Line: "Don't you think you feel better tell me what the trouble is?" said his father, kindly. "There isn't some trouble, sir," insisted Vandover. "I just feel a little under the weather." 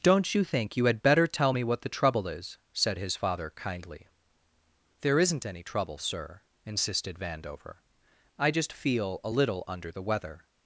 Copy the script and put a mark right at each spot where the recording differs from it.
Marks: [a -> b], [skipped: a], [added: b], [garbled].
"Don't you think you [feel -> had] better tell me what the trouble is?" said his father, kindly. "There isn't [some -> any] trouble, sir," insisted Vandover. "I just feel a little under the weather."